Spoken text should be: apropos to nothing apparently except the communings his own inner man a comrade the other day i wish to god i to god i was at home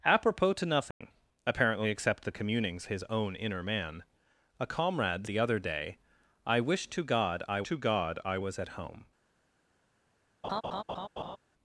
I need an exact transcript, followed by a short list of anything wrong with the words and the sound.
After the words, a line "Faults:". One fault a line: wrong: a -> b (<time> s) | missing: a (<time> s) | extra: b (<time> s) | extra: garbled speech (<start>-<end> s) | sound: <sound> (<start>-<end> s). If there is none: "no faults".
apropos to nothing apparently except the communings his own inner man a comrade the other day i wish to god i to god i was at home
Faults:
sound: dropout (0.9-1.0 s)
sound: laugh (10.4-11.4 s)